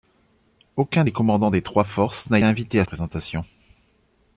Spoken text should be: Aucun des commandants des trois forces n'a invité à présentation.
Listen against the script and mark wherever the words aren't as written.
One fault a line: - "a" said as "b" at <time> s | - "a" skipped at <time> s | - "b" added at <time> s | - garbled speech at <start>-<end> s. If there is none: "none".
none